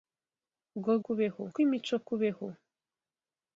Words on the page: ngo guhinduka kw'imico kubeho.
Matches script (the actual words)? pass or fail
fail